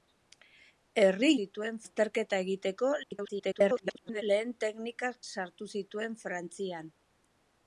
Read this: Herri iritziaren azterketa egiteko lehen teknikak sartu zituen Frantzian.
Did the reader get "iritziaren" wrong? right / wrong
wrong